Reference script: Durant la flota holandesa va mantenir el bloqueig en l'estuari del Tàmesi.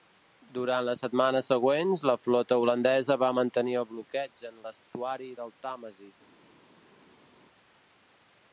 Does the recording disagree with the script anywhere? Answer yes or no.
yes